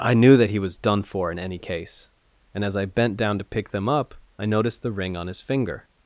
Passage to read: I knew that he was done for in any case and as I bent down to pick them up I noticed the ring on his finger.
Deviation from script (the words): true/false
false